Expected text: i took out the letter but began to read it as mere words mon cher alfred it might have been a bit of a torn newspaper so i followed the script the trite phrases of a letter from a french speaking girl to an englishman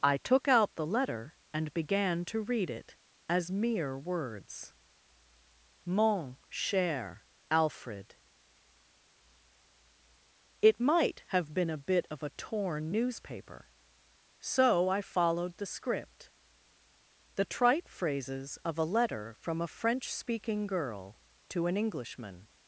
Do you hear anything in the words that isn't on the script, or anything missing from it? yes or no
yes